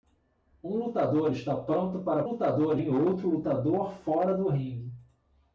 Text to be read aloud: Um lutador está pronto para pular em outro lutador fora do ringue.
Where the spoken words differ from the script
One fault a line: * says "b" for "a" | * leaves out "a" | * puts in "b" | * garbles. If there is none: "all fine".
* says "lutador" for "pular"